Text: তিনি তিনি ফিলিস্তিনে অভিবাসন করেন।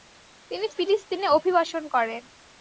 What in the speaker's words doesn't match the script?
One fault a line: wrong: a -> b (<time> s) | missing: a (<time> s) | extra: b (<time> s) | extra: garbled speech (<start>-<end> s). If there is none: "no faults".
missing: তিনি (0.7 s)